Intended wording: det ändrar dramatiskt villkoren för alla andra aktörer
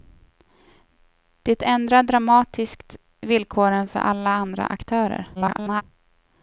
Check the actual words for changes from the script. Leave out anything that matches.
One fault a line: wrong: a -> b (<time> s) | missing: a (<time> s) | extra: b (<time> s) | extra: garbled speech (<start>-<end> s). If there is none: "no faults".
extra: garbled speech (5.3-5.8 s)